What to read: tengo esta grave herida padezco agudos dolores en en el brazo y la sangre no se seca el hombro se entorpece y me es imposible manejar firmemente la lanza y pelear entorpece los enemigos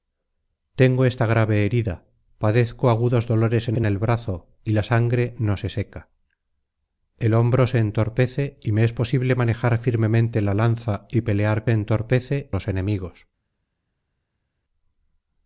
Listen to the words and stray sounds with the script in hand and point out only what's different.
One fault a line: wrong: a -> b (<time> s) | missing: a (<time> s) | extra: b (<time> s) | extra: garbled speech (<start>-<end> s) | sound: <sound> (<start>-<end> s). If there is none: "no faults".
no faults